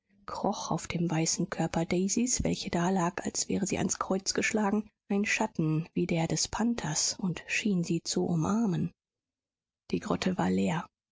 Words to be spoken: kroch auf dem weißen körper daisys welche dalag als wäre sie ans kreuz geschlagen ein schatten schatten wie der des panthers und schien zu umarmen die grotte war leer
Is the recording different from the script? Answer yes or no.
yes